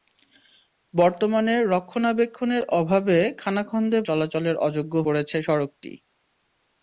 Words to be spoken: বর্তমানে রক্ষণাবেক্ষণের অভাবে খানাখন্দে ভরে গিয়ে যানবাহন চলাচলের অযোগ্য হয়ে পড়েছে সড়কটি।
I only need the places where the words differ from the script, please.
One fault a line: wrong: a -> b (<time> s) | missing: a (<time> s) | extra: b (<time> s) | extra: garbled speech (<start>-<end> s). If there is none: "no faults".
missing: ভরে গিয়ে যানবাহন (4.0 s)
missing: হয়ে (4.9 s)